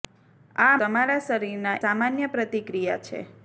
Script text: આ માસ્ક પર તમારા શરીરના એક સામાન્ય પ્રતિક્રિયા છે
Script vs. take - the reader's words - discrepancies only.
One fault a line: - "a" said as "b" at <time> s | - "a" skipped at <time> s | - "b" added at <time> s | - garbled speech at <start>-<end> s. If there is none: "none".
- "માસ્ક પર" skipped at 0.8 s
- "એક" skipped at 1.8 s